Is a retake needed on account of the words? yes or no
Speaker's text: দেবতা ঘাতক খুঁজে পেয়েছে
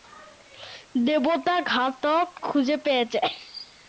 no